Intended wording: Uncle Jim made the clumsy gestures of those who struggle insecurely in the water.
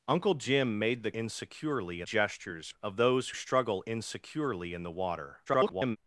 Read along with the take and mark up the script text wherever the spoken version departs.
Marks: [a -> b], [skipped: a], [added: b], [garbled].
Uncle Jim made the [clumsy -> insecurely] gestures of those [skipped: who] struggle insecurely in the water. [garbled]